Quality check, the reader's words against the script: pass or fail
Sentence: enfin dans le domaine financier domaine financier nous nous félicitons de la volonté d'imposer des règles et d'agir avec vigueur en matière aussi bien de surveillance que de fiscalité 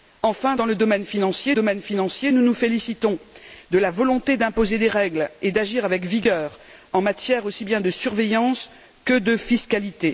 pass